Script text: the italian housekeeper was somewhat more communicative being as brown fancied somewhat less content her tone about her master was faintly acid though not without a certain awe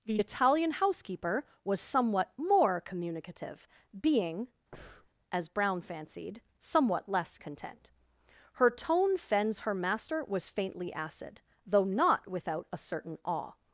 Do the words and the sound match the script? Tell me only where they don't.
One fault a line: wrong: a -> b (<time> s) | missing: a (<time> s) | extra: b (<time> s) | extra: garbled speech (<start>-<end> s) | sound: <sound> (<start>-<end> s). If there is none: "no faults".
sound: breath (4.7-5.1 s)
wrong: about -> fends (9.2 s)